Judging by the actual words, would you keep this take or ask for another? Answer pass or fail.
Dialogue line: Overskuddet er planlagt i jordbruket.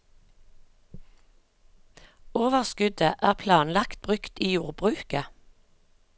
fail